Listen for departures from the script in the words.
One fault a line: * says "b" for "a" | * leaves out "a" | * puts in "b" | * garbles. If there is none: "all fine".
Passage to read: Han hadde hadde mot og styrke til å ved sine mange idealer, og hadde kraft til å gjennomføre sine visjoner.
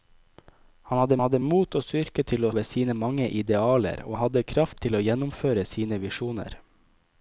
all fine